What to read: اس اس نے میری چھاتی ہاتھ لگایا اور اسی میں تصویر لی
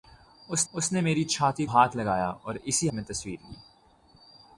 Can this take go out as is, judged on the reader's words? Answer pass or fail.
pass